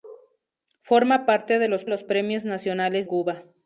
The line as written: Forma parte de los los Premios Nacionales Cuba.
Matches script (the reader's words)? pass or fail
pass